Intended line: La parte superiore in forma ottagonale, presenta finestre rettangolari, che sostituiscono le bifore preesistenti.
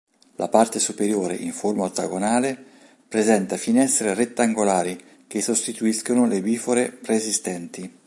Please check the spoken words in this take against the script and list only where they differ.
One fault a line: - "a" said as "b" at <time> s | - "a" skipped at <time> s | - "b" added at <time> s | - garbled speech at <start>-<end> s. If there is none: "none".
none